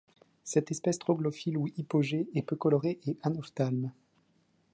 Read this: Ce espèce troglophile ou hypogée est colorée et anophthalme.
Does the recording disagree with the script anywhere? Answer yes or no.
yes